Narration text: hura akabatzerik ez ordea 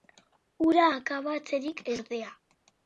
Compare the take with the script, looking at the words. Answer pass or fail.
pass